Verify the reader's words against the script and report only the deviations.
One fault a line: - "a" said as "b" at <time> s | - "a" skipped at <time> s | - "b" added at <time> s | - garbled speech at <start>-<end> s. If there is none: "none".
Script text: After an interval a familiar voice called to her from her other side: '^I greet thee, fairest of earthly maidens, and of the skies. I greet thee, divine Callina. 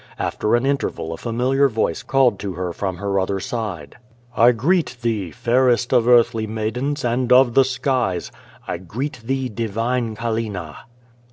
none